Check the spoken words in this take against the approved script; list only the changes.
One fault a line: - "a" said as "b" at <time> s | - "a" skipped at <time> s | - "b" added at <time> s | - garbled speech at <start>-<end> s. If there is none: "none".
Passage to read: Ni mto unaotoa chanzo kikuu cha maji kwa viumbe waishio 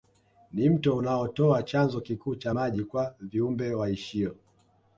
none